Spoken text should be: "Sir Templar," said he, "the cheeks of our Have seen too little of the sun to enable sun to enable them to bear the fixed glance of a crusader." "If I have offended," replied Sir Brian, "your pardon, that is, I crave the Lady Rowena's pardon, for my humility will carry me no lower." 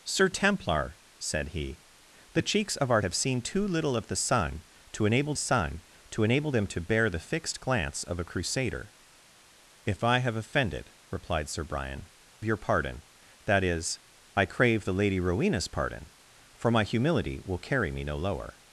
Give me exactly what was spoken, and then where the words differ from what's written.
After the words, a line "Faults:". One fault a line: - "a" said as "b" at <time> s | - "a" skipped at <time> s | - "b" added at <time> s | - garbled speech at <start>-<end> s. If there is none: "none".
"Sir Templar," said he, "the cheeks of our Have seen too little of the sun to enable sun to enable them to bear the fixed glance of a crusader." "If I have offended," replied Sir Brian, "your pardon, that is, I crave the Lady Rowena's pardon, for my humility will carry me no lower."
Faults:
none